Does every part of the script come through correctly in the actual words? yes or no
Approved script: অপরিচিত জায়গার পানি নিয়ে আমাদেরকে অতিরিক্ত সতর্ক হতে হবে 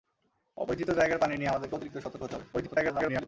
no